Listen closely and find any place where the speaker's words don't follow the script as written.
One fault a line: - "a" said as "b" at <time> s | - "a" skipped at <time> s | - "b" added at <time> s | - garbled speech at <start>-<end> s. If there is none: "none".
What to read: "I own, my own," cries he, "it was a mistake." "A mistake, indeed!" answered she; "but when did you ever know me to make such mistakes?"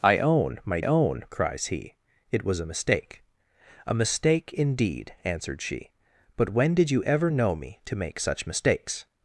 none